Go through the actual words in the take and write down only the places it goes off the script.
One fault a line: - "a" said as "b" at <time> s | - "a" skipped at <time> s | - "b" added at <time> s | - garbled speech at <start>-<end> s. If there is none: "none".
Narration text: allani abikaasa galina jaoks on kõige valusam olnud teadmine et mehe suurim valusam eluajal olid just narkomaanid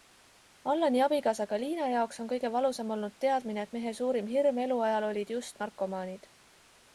- "valusam" said as "hirm" at 4.3 s